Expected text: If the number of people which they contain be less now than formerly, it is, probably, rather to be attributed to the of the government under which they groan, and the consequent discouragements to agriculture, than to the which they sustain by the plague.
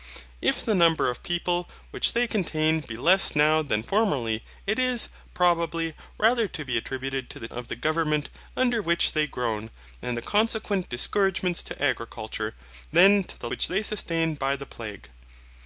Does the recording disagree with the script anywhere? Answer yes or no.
no